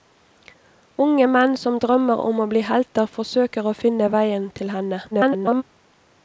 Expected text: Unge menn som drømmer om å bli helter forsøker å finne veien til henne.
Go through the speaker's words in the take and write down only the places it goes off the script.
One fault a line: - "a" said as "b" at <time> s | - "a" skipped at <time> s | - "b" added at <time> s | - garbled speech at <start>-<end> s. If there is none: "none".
- garbled speech at 5.1-5.6 s